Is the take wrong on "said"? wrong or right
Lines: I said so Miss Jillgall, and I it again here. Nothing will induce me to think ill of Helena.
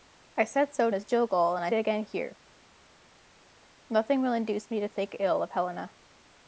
right